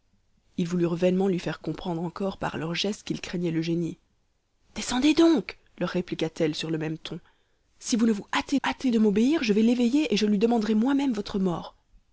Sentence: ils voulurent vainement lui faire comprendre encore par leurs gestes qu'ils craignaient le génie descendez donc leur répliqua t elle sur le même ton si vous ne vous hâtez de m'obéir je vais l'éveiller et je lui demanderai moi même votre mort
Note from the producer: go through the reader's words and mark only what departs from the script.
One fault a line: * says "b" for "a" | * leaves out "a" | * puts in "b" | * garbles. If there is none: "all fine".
* puts in "hâtez"